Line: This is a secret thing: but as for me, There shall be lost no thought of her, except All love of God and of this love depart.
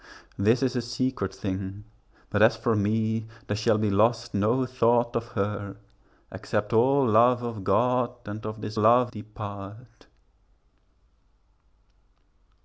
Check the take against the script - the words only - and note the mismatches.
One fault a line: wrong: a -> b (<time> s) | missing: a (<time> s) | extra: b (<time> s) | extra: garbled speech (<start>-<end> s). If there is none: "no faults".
no faults